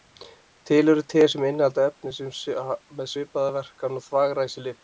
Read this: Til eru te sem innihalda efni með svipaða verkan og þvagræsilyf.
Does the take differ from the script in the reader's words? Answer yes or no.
no